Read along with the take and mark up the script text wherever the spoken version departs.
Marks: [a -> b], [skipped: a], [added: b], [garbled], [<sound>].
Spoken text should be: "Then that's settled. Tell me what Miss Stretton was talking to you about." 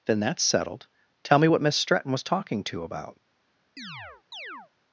"Then that's settled. Tell me what Miss Stretton was talking to [skipped: you] about." [chirp]